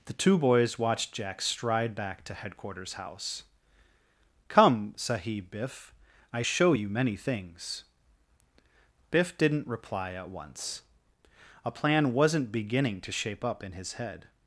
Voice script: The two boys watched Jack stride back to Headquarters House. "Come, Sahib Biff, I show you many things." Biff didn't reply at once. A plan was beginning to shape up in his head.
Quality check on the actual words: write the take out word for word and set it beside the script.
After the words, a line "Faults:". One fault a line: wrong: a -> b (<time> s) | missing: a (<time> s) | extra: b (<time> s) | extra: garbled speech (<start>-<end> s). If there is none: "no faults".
The two boys watched Jack stride back to Headquarters House. "Come, Sahib Biff, I show you many things." Biff didn't reply at once. A plan wasn't beginning to shape up in his head.
Faults:
wrong: was -> wasn't (12.1 s)